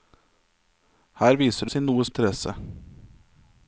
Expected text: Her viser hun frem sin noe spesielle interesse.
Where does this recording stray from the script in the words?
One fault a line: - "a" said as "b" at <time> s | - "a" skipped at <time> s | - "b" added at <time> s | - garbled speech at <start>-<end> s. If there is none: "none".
- "hun frem" skipped at 1.7 s
- "spesielle" skipped at 2.0 s